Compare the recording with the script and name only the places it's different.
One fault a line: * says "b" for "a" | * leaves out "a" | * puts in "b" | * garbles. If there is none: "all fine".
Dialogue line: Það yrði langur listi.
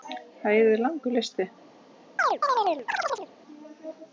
all fine